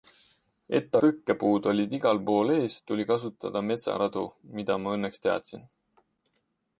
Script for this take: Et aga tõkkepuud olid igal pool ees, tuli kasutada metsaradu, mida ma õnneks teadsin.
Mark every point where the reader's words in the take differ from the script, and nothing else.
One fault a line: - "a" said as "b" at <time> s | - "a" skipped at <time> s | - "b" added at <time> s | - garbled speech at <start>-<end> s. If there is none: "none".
- "aga" skipped at 0.9 s